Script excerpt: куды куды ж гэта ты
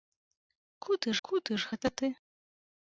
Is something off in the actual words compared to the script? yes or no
no